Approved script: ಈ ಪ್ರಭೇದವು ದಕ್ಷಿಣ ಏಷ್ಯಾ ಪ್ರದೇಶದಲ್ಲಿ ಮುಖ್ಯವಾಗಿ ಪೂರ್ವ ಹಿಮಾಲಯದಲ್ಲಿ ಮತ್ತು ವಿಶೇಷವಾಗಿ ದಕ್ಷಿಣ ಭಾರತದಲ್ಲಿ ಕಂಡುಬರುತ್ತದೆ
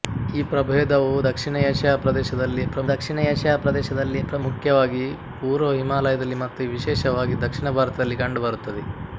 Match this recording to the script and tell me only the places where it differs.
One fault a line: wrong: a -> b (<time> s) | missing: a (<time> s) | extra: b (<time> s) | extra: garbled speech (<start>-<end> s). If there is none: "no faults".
extra: ದಕ್ಷಿಣ ಏಷ್ಯಾ ಪ್ರದೇಶದಲ್ಲಿ (2.9 s)